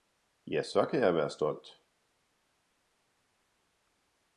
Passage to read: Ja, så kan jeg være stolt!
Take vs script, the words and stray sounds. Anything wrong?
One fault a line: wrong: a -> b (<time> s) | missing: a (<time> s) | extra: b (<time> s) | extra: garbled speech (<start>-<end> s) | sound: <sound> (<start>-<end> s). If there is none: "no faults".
no faults